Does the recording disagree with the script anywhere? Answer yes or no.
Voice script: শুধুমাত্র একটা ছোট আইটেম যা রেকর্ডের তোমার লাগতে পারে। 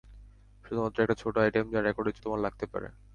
no